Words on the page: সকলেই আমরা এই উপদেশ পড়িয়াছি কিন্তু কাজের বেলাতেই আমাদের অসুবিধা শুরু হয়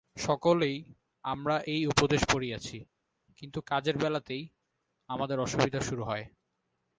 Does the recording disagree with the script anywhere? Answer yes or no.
no